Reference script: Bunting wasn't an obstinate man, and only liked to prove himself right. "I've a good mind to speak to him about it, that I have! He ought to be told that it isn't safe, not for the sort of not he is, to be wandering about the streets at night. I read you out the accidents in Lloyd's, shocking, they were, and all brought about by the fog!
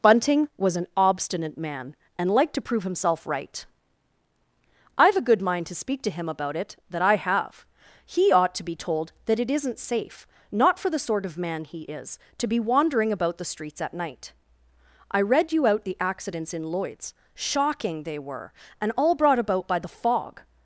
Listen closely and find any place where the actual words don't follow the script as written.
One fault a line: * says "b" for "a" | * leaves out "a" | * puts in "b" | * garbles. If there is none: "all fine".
* says "was" for "wasn't"
* leaves out "only"
* says "man" for "not"